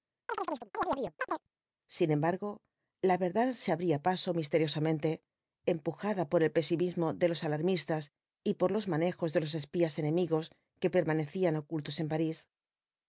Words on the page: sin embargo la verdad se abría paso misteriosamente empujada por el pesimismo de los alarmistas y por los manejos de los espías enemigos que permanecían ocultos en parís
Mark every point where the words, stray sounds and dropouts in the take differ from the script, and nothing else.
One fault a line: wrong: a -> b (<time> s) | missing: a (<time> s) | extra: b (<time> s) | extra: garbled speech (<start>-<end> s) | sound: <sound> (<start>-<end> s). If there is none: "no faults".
sound: chirp (0.3-1.5 s)